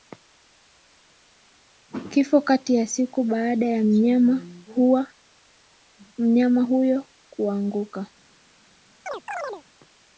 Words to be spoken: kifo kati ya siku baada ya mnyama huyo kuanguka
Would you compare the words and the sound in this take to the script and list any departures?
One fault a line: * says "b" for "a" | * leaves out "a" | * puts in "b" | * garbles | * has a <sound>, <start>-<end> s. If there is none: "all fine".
* has a chirp, 9.1-9.6 s